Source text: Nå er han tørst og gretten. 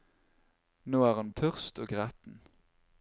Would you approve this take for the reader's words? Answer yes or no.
yes